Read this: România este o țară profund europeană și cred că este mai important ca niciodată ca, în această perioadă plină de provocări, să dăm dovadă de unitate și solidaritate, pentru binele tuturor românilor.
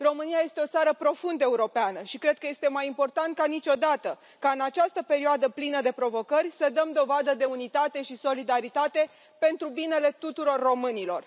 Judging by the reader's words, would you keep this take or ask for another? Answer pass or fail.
pass